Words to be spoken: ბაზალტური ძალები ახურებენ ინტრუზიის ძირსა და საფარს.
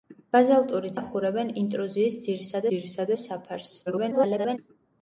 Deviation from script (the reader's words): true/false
true